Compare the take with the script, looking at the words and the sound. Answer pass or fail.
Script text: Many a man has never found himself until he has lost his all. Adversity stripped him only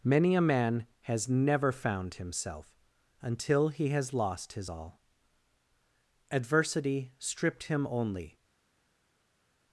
pass